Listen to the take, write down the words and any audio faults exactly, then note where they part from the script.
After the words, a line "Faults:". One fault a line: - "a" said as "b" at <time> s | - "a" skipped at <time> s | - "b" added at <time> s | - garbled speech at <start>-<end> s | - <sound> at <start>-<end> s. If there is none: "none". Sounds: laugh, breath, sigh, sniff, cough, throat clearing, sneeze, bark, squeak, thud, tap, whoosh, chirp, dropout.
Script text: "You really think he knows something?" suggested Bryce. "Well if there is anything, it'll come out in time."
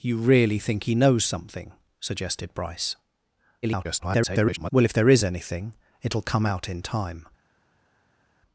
"You really think he knows something?" suggested Bryce. [garbled] "Well if there is anything, it'll come out in time."
Faults:
- garbled speech at 3.6-4.7 s